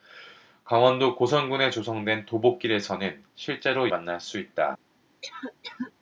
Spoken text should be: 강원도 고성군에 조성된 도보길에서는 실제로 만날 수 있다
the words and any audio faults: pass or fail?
fail